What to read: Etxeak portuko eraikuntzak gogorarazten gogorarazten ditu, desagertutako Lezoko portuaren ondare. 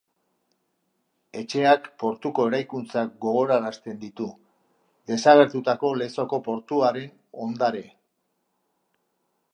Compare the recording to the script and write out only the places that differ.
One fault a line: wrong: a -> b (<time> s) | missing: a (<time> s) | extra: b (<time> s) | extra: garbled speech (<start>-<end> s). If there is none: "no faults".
missing: gogorarazten (4.0 s)